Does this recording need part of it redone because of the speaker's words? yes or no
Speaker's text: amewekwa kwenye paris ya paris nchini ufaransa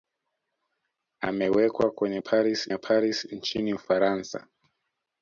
no